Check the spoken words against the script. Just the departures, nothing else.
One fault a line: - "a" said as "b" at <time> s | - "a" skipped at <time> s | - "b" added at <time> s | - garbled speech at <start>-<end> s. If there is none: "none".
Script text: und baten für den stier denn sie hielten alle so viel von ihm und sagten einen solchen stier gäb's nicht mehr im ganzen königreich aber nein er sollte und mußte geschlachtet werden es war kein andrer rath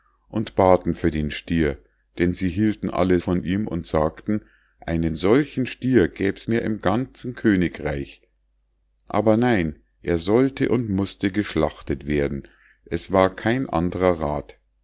- "so viel" skipped at 3.2 s
- "nicht" skipped at 6.5 s